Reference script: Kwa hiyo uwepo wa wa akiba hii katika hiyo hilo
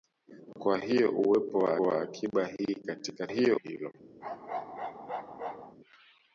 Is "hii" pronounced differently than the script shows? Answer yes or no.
no